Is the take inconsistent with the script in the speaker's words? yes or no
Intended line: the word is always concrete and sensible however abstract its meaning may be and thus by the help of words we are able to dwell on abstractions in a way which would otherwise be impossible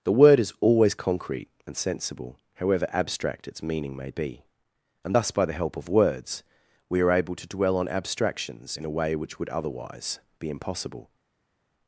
no